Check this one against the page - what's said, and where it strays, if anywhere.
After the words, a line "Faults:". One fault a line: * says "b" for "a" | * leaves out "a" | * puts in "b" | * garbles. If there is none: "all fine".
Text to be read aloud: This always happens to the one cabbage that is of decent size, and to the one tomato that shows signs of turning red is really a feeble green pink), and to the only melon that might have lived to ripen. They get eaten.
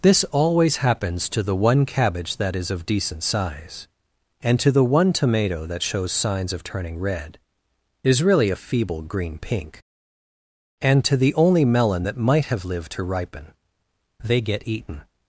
This always happens to the one cabbage that is of decent size, and to the one tomato that shows signs of turning red is really a feeble green pink), and to the only melon that might have lived to ripen. They get eaten.
Faults:
all fine